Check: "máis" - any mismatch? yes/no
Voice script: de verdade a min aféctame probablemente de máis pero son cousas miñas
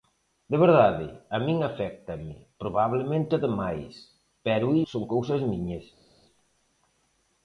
no